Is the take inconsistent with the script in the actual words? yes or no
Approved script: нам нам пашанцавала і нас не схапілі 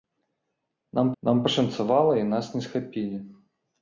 no